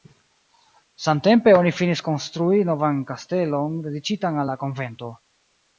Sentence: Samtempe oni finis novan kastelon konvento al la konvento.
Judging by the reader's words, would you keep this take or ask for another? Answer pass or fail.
fail